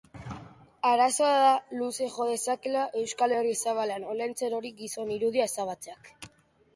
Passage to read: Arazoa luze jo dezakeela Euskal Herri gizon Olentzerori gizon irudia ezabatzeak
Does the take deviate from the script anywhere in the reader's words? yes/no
yes